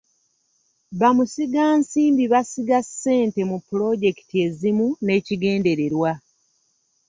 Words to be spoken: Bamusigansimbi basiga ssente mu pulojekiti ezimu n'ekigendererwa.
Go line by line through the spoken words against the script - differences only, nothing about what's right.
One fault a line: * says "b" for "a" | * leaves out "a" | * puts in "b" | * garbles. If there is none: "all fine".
all fine